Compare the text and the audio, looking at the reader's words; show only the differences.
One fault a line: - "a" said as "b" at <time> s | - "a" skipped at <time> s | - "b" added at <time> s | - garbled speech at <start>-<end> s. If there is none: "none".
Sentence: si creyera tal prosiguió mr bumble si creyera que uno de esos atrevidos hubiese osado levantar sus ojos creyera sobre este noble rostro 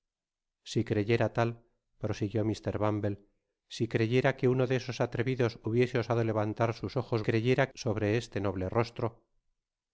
none